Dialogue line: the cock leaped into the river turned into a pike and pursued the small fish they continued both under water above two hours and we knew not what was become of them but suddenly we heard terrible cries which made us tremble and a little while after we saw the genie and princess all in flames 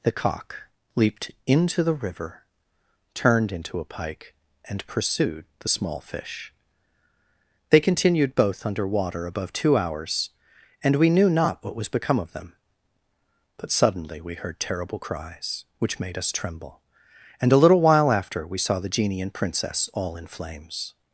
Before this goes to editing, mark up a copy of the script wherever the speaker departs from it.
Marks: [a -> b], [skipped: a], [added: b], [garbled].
the cock leaped into the river turned into a pike and pursued the small fish they continued both under water above two hours and we knew not what was become of them but suddenly we heard terrible cries which made us tremble and a little while after we saw the genie and princess all in flames